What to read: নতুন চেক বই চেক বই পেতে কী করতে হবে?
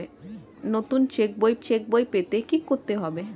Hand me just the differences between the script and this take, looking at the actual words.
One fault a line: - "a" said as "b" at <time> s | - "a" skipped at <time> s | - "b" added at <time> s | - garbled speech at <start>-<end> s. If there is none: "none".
none